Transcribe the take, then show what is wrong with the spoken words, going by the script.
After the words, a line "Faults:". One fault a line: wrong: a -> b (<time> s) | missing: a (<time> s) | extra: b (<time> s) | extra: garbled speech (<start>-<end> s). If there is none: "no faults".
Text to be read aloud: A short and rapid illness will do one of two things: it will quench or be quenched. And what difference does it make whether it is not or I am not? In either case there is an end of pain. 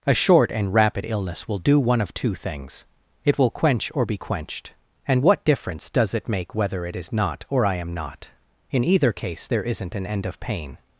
A short and rapid illness will do one of two things: it will quench or be quenched. And what difference does it make whether it is not or I am not? In either case there isn't an end of pain.
Faults:
wrong: is -> isn't (9.6 s)